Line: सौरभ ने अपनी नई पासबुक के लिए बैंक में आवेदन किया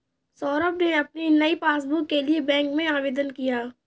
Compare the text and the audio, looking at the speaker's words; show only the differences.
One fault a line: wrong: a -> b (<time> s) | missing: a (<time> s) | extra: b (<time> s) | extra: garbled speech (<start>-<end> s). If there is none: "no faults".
no faults